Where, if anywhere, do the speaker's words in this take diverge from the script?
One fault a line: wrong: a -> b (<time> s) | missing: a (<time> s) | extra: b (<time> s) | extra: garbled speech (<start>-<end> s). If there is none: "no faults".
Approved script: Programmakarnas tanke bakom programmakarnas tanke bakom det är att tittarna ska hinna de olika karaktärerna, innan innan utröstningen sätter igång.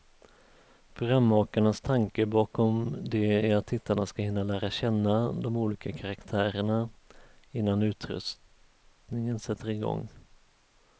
missing: programmakarnas tanke bakom (3.0 s)
extra: lära känna (4.4 s)
missing: innan (7.8 s)